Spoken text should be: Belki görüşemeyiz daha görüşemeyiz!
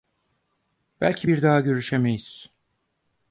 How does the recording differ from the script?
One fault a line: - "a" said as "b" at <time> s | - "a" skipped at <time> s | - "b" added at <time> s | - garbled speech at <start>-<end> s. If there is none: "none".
- "görüşemeyiz" said as "bir" at 1.3 s